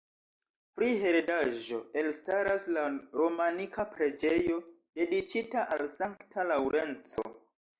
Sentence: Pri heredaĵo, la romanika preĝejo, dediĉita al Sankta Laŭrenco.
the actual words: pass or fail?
fail